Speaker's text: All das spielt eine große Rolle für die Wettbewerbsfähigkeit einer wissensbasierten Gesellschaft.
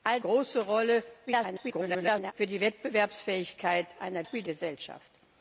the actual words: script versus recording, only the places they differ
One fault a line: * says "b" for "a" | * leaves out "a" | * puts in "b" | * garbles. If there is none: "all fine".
* leaves out "das spielt eine"
* garbles
* says "spielt" for "wissensbasierten"